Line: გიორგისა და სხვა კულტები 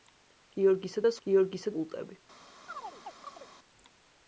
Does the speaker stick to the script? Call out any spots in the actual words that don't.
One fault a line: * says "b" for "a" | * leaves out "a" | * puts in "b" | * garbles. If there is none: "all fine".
* says "გიორგისა" for "სხვა"